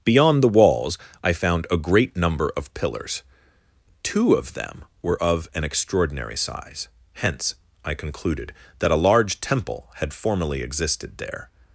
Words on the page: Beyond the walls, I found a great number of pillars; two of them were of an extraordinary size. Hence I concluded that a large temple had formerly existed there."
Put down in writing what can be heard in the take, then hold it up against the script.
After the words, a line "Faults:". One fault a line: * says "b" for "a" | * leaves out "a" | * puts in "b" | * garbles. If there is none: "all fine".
Beyond the walls, I found a great number of pillars; two of them were of an extraordinary size. Hence I concluded that a large temple had formerly existed there."
Faults:
all fine